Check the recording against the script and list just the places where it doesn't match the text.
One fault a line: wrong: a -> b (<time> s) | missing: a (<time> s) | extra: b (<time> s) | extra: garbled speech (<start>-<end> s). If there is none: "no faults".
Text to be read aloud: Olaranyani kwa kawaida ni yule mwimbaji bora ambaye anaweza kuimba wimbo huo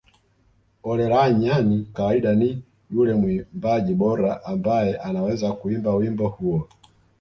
missing: kwa (1.9 s)